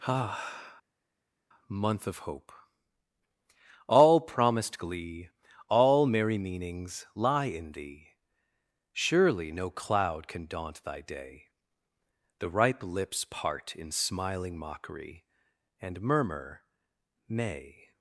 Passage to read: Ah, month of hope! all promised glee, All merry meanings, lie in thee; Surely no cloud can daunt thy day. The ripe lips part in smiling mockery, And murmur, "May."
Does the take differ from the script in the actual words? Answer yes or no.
no